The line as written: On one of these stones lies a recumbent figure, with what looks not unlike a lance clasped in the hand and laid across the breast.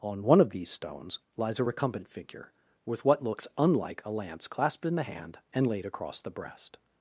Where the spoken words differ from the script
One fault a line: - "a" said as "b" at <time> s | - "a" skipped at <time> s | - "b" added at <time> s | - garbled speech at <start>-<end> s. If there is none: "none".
- "not" skipped at 3.5 s